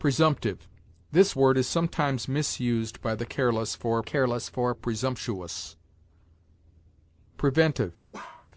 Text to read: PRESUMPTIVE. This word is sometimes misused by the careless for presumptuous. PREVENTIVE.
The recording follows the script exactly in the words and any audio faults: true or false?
false